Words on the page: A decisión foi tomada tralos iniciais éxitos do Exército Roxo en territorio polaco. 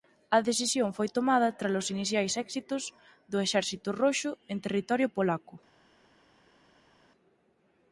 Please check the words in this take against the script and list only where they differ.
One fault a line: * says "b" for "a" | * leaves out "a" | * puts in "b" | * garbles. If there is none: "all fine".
all fine